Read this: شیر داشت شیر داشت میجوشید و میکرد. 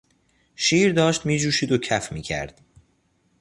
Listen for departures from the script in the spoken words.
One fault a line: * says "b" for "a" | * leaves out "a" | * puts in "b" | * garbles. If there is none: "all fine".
* leaves out "شیر داشت"
* puts in "کف"